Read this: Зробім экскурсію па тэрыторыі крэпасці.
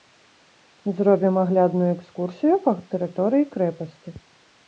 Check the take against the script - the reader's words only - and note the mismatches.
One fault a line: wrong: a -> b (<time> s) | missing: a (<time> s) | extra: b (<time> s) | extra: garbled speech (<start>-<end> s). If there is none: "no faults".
extra: аглядную (1.4 s)